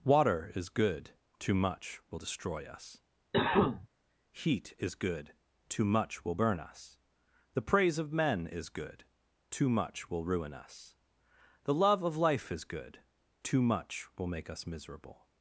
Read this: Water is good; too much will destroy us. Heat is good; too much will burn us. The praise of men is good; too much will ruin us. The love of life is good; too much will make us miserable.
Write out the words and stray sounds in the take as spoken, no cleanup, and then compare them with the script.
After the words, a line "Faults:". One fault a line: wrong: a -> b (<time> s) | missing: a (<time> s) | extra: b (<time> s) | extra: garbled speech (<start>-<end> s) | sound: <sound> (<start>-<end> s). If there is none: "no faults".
Water is good; too much will destroy us. Heat is good; too much will burn us. The praise of men is good; too much will ruin us. The love of life is good; too much will make us miserable.
Faults:
sound: cough (3.3-3.9 s)